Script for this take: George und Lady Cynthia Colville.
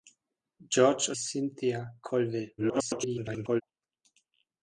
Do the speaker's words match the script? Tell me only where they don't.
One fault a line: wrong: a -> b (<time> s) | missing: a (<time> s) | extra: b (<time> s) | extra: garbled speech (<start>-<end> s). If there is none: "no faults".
missing: und Lady (1.1 s)
extra: garbled speech (2.6-3.6 s)